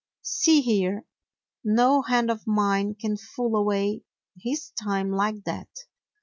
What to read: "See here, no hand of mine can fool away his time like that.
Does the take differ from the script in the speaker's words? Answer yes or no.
no